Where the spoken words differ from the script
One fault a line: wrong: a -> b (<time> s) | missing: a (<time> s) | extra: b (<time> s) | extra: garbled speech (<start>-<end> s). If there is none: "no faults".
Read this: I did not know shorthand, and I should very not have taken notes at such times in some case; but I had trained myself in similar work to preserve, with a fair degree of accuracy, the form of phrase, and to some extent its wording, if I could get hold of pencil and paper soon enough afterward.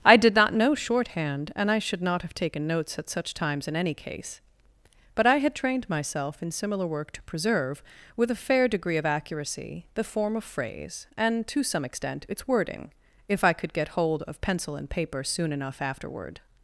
missing: very (2.0 s)
wrong: some -> any (3.8 s)